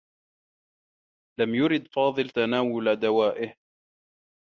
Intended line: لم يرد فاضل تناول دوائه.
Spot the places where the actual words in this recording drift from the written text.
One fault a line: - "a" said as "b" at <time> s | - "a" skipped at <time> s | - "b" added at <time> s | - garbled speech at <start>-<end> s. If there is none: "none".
none